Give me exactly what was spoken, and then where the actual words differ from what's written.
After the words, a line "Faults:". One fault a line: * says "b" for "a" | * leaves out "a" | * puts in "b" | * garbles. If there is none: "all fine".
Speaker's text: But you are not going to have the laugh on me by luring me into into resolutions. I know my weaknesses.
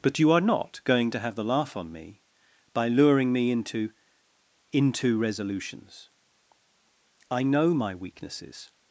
But you are not going to have the laugh on me by luring me into into resolutions. I know my weaknesses.
Faults:
all fine